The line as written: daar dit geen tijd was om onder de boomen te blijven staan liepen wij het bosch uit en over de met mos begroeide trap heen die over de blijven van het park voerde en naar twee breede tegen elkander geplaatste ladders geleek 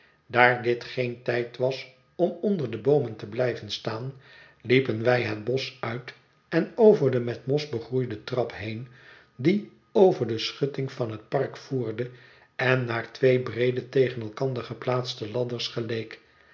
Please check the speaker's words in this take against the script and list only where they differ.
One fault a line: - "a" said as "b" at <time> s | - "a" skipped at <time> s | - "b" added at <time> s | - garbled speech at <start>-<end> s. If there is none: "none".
- "blijven" said as "schutting" at 10.4 s